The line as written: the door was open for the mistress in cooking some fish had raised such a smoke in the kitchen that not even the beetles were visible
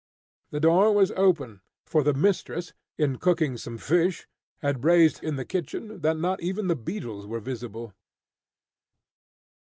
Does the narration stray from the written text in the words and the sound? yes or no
yes